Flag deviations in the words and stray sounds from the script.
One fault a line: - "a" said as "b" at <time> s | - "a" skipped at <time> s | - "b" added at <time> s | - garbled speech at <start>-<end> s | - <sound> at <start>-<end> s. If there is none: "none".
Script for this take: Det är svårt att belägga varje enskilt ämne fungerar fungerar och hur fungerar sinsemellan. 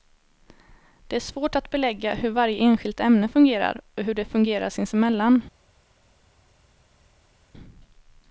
- "hur" added at 2.1 s
- "fungerar" skipped at 3.8 s
- "de" added at 4.1 s